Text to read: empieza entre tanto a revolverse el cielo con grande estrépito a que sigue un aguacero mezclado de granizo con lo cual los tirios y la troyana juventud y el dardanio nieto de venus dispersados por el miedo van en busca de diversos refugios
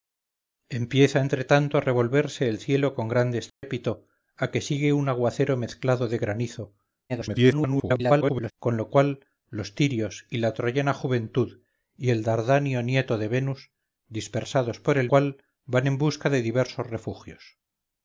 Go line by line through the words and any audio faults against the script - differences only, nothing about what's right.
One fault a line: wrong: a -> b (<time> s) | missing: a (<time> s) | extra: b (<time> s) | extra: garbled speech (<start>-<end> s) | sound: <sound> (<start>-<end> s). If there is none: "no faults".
sound: dropout (3.5-3.6 s)
extra: garbled speech (7.1-8.5 s)
wrong: miedo -> cual (15.1 s)